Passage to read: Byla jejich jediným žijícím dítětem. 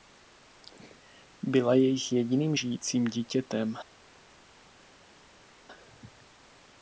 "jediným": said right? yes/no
yes